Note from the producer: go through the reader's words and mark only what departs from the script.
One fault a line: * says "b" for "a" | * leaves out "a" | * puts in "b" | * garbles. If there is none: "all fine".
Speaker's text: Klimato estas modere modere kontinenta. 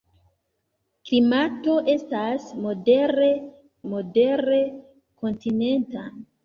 all fine